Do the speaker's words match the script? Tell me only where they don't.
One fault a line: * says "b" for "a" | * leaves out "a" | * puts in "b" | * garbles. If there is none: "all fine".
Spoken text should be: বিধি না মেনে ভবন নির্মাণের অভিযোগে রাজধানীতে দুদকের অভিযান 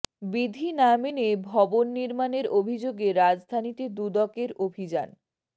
all fine